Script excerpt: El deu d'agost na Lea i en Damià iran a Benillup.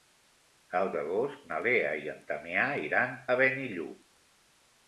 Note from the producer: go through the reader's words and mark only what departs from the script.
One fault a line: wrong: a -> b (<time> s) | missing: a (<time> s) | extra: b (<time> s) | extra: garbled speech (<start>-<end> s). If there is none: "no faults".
missing: deu (0.9 s)